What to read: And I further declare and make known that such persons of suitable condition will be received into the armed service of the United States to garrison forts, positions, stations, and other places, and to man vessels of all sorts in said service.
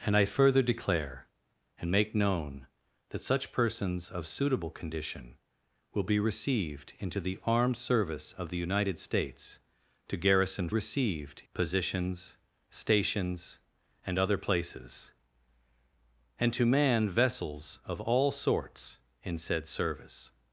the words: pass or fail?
fail